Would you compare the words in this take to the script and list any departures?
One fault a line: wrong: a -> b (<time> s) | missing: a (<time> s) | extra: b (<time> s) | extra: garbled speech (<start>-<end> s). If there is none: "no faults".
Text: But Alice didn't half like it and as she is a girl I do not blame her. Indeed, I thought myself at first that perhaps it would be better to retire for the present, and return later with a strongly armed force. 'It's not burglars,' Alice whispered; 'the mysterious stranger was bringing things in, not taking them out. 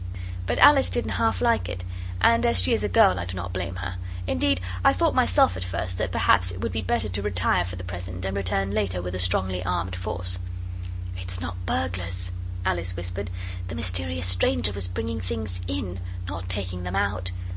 no faults